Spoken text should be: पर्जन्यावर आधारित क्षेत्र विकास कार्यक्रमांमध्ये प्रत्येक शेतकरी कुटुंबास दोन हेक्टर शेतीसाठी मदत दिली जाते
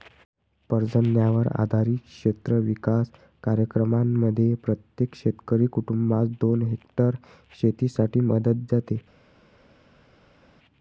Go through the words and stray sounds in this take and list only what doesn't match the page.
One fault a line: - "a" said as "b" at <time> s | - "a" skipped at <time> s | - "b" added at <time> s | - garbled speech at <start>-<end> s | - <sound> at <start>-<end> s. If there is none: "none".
- "दिली" skipped at 8.7 s